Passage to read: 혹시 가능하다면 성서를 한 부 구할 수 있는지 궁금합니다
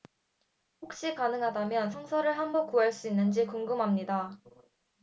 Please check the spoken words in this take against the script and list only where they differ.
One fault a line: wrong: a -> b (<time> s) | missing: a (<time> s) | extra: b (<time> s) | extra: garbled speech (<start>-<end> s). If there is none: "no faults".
no faults